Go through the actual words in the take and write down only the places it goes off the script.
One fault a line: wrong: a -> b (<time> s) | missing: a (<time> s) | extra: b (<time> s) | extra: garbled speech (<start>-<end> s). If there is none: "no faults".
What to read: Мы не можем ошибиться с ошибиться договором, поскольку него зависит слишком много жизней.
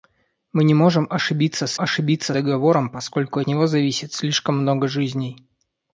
no faults